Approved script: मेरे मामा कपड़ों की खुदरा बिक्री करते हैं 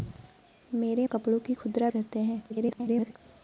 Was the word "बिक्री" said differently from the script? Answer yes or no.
yes